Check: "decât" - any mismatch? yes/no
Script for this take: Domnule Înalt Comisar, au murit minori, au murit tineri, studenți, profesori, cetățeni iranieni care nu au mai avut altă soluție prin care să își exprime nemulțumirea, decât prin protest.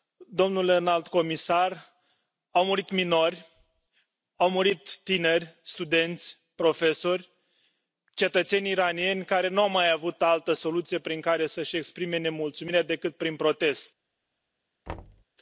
no